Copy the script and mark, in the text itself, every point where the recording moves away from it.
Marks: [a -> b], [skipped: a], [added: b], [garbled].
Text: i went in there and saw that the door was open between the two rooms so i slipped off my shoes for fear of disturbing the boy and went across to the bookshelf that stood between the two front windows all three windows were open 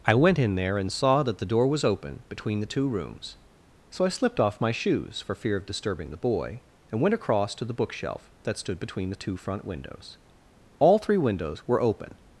i went in there and saw that the door was open between the two rooms so i slipped off my shoes for fear of disturbing the boy and went across to the bookshelf that stood between the two front windows all three windows were open